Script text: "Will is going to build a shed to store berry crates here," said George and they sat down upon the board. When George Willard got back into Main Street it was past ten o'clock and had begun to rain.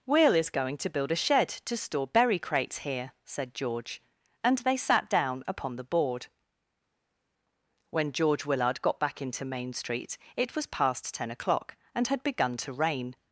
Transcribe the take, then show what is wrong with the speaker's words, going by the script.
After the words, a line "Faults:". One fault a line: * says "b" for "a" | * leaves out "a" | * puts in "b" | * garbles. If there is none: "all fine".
"Will is going to build a shed to store berry crates here," said George and they sat down upon the board. When George Willard got back into Main Street it was past ten o'clock and had begun to rain.
Faults:
all fine